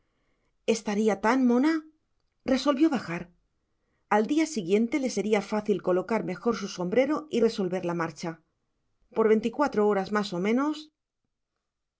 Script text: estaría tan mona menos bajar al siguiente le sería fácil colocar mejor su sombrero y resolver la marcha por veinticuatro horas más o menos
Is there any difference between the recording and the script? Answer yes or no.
yes